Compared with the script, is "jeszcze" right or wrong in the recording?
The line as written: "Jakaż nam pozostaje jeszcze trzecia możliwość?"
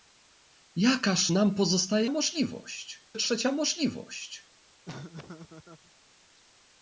wrong